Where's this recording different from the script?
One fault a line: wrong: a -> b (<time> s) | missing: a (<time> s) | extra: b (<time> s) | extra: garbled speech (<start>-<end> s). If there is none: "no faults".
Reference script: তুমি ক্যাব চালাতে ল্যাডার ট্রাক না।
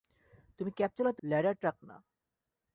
no faults